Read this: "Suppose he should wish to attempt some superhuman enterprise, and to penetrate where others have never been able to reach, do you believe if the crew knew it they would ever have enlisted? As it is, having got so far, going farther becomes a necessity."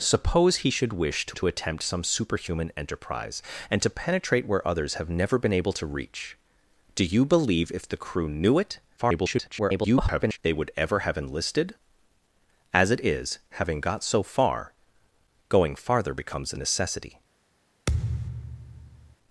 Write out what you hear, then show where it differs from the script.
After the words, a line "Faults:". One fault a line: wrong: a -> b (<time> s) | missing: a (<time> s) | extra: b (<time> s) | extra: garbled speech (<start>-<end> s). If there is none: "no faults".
"Suppose he should wish to to attempt some superhuman enterprise, and to penetrate where others have never been able to reach, do you believe if the crew knew it [garbled] they would ever have enlisted? As it is, having got so far, going farther becomes a necessity."
Faults:
extra: to (1.4 s)
extra: garbled speech (9.0-10.4 s)